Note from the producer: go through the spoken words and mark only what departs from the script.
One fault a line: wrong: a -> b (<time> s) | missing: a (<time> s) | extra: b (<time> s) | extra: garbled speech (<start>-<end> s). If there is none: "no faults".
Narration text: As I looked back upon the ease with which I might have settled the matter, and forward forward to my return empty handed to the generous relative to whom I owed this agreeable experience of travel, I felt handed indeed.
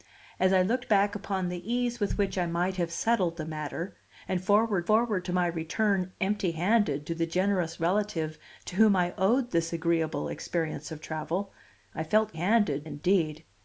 no faults